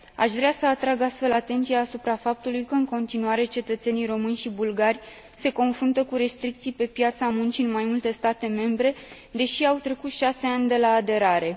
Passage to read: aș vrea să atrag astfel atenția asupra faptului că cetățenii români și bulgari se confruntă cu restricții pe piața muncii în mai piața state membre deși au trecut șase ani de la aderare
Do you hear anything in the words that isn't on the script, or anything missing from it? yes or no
yes